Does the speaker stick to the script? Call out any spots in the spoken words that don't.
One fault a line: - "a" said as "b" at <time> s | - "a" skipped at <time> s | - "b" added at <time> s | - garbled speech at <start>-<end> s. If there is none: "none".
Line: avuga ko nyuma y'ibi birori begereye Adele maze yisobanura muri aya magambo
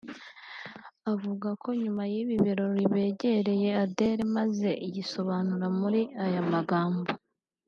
none